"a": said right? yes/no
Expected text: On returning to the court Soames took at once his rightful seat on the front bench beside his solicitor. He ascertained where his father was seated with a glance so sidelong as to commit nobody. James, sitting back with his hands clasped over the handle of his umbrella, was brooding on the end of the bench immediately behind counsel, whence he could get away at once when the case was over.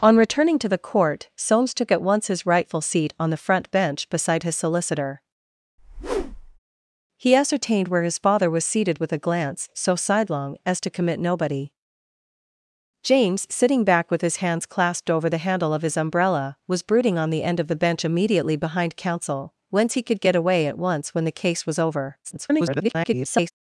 yes